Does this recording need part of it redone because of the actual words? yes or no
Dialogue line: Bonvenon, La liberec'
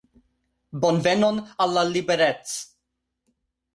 yes